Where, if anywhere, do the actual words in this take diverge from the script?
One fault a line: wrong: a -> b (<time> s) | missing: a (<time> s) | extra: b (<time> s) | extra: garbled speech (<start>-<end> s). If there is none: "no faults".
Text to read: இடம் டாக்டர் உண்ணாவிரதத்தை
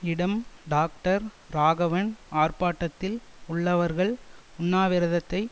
extra: ராகவன் ஆர்ப்பாட்டத்தில் உள்ளவர்கள் (1.5 s)